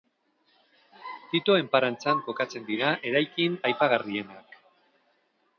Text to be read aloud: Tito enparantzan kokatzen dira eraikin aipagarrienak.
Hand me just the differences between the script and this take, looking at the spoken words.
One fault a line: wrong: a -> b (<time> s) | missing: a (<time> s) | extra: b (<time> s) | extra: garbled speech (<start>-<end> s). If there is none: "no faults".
no faults